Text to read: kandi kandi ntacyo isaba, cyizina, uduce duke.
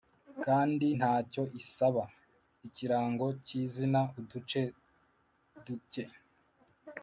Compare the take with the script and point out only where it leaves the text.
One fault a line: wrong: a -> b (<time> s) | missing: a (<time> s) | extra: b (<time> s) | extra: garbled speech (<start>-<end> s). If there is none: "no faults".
missing: kandi (0.9 s)
extra: ikirango (2.7 s)